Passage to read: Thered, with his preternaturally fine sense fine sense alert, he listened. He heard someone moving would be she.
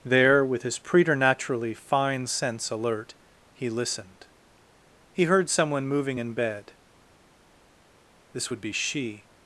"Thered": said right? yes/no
no